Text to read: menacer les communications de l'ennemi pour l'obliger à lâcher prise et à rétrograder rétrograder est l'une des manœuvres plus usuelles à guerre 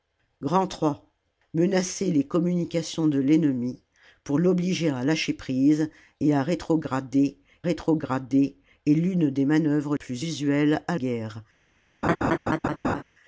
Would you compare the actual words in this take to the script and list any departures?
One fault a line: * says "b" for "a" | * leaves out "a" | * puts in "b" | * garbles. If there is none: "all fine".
all fine